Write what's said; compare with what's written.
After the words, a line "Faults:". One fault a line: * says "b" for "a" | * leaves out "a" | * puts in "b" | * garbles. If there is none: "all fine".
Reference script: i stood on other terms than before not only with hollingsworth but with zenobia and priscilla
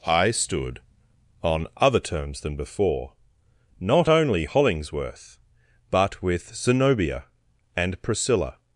i stood on other terms than before not only hollingsworth but with zenobia and priscilla
Faults:
* leaves out "with"